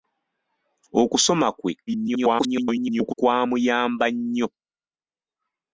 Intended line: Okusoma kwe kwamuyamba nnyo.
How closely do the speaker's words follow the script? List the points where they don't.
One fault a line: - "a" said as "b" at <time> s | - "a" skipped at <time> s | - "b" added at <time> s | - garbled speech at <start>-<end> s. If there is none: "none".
- garbled speech at 1.9-3.1 s